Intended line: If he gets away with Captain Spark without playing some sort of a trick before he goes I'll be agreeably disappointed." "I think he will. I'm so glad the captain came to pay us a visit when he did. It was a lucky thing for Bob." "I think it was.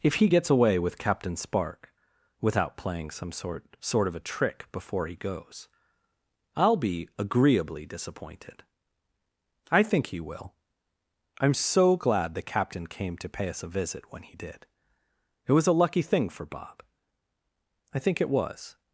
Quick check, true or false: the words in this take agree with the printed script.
false